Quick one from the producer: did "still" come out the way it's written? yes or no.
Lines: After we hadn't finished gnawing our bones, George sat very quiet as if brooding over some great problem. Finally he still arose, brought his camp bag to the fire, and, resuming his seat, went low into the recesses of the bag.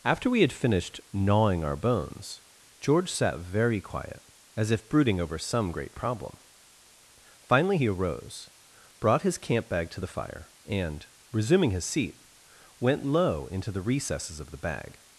no